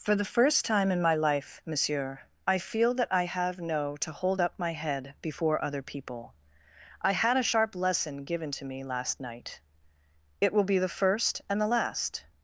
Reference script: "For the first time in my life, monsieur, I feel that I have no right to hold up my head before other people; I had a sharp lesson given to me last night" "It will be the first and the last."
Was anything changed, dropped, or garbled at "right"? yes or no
yes